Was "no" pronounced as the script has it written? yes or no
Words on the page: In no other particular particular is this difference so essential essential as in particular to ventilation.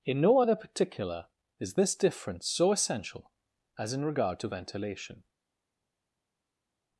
yes